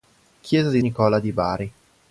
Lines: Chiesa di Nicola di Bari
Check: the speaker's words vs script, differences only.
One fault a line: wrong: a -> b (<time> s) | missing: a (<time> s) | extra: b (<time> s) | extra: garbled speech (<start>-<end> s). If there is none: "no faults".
no faults